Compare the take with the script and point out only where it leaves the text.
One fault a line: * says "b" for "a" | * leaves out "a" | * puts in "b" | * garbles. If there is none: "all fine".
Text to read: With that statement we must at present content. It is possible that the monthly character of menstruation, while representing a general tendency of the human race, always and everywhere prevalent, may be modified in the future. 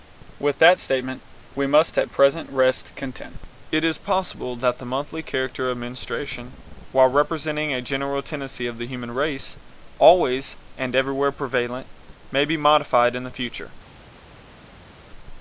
* puts in "rest"